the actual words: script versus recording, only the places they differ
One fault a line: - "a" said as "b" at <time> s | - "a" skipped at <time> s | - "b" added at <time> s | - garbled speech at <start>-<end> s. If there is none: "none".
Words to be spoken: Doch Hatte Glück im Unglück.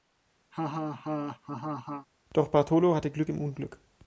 - "Bartolo" added at 2.5 s